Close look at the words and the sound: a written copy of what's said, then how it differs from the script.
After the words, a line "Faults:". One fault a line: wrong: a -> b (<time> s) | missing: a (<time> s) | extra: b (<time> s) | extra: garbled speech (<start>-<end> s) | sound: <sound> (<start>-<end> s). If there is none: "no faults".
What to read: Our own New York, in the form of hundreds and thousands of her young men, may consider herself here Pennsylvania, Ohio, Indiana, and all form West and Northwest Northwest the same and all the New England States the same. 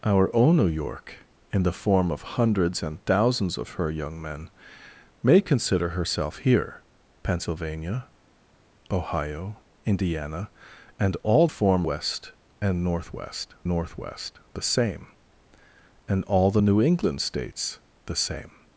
Our own New York, in the form of hundreds and thousands of her young men, may consider herself here Pennsylvania, Ohio, Indiana, and all form West and Northwest Northwest the same and all the New England States the same.
Faults:
no faults